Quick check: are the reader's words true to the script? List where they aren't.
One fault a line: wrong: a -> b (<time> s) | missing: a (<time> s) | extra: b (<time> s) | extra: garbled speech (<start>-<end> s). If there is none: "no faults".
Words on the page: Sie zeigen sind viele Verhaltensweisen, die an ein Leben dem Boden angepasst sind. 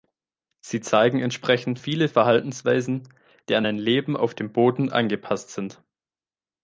wrong: sind -> entsprechend (1.2 s)
extra: auf (4.1 s)